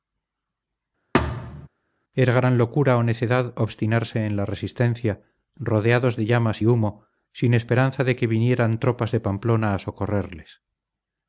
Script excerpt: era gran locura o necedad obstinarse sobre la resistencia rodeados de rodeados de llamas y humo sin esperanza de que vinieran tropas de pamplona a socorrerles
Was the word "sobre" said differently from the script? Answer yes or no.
yes